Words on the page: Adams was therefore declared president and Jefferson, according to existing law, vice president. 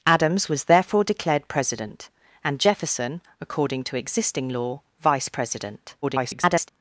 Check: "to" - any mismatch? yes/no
no